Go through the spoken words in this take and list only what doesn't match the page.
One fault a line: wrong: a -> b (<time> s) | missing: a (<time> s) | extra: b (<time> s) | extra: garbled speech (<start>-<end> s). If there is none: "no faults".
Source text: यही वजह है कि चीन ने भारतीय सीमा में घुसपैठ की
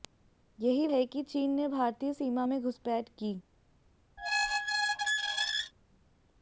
missing: वजह (0.9 s)